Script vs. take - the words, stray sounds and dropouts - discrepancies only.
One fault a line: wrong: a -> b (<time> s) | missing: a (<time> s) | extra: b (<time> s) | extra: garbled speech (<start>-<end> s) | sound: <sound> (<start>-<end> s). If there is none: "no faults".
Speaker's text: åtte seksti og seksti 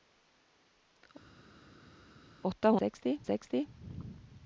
no faults